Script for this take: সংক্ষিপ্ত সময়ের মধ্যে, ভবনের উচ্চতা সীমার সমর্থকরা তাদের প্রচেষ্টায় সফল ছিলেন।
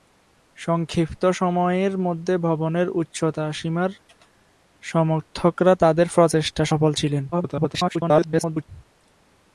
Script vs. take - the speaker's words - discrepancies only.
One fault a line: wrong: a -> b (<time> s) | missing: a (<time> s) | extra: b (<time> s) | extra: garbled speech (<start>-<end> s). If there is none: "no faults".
extra: garbled speech (7.3-8.7 s)